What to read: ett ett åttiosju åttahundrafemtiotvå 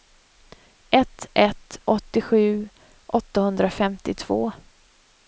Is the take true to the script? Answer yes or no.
yes